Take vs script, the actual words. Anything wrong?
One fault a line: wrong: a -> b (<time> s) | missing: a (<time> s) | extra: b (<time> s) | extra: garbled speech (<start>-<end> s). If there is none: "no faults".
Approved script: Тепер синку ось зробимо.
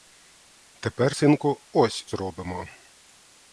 no faults